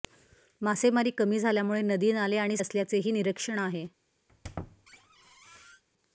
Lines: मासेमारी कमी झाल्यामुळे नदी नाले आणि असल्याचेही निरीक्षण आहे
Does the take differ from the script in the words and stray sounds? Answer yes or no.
yes